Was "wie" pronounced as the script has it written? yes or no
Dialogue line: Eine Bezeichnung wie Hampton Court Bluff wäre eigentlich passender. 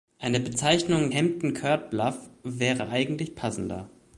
no